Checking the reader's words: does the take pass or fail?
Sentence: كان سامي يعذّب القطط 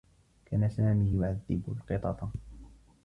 pass